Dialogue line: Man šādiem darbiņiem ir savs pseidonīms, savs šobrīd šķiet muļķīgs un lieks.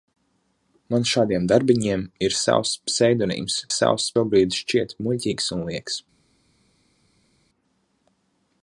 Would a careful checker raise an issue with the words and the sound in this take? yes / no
no